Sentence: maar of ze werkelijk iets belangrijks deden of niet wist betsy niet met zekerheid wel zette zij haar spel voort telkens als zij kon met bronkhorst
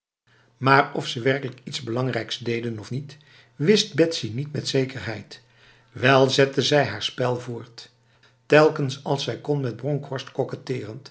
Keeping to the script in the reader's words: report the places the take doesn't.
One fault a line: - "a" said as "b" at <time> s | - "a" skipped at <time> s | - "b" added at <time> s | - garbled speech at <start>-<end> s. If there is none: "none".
none